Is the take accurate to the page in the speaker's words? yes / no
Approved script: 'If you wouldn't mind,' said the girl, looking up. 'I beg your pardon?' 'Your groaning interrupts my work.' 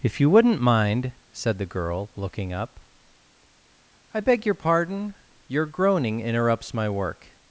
yes